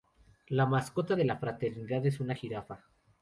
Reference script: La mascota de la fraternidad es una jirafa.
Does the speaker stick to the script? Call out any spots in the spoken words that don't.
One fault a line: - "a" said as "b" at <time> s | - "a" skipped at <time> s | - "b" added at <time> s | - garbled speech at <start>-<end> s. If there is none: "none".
none